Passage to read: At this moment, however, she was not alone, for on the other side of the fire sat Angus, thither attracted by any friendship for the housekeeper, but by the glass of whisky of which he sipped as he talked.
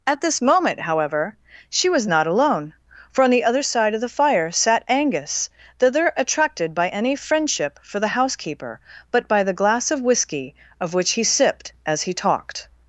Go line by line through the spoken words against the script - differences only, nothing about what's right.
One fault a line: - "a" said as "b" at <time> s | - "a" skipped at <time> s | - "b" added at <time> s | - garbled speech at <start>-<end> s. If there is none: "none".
none